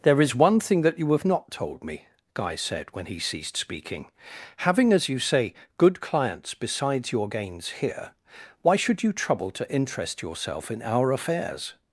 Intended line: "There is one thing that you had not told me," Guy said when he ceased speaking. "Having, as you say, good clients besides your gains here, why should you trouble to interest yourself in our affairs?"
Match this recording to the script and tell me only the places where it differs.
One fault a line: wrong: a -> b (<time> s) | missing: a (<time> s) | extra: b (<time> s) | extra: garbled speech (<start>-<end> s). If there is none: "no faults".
wrong: had -> have (1.1 s)